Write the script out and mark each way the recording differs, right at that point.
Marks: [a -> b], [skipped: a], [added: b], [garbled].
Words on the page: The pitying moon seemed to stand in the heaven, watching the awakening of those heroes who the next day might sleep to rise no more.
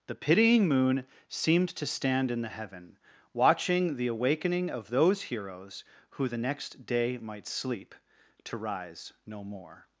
The pitying moon seemed to stand in the heaven, watching the awakening of those heroes who the next day might sleep to rise no more.